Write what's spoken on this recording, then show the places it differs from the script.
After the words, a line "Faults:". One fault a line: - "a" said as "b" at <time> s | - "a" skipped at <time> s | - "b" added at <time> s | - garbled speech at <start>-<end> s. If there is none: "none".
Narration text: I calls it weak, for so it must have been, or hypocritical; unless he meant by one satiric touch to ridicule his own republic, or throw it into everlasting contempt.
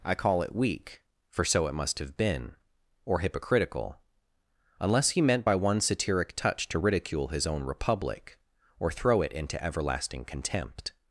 I call it weak, for so it must have been, or hypocritical; unless he meant by one satiric touch to ridicule his own republic, or throw it into everlasting contempt.
Faults:
- "calls" said as "call" at 0.1 s